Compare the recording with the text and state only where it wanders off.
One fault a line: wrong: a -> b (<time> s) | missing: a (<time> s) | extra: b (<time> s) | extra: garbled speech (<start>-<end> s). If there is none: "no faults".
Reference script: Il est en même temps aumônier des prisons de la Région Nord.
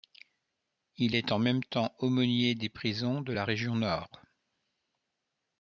no faults